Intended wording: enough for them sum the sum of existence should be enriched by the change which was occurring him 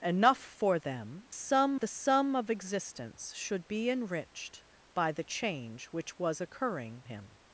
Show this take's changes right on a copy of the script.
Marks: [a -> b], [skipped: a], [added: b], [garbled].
enough for them sum the sum of existence should be enriched by the change which was occurring him